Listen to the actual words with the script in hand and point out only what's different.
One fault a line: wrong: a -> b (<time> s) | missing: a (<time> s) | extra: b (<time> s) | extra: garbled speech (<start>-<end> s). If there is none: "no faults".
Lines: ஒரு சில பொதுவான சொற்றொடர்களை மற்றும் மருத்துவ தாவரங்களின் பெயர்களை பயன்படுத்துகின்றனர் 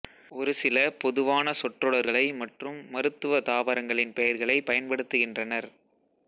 no faults